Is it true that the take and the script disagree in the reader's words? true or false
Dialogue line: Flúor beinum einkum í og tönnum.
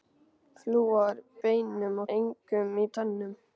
false